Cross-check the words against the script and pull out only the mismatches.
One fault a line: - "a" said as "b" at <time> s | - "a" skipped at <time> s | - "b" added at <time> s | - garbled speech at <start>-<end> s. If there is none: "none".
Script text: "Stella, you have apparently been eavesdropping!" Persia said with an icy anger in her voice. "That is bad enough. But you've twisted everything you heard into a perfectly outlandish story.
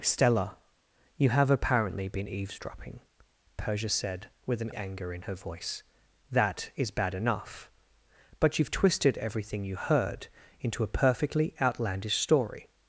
- "icy" skipped at 4.7 s